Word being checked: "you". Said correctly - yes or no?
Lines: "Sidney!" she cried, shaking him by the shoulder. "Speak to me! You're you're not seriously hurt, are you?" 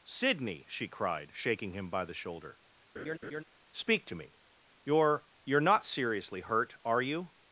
yes